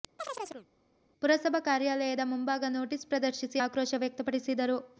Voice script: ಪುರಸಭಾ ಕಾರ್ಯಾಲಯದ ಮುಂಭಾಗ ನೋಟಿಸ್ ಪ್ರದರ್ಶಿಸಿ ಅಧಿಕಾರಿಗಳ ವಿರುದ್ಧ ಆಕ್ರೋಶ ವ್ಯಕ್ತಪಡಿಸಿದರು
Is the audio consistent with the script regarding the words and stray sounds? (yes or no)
no